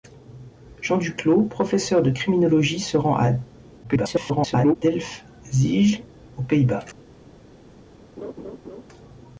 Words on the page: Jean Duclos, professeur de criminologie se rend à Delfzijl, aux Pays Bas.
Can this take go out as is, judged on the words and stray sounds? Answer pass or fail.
fail